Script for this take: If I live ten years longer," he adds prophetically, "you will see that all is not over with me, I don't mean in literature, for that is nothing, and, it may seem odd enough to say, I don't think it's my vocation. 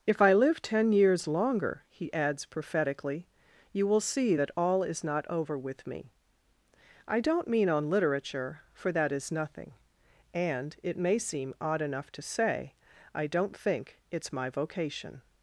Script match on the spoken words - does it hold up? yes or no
no